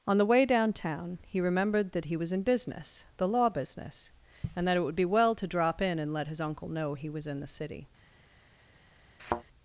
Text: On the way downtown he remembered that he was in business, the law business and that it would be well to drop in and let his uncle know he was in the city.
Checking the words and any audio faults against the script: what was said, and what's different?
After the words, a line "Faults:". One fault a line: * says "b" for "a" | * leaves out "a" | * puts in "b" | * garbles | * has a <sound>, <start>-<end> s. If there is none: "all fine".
On the way downtown he remembered that he was in business, the law business and that it would be well to drop in and let his uncle know he was in the city.
Faults:
* has a thud, 9.2-9.4 s